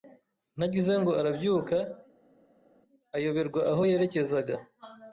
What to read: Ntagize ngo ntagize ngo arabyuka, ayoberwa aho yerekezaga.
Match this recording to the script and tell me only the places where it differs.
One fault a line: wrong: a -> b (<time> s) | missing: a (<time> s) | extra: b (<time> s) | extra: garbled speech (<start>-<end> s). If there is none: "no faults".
missing: ntagize ngo (1.1 s)